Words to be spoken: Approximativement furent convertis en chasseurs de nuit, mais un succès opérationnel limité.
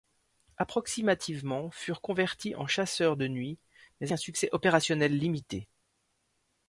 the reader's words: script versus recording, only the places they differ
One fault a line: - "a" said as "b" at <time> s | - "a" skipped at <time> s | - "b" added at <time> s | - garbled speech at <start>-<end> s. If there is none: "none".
none